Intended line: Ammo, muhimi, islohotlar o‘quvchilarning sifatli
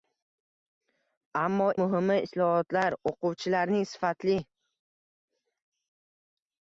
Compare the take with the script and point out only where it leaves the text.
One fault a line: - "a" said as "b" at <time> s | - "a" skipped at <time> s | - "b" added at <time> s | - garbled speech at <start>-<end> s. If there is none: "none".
none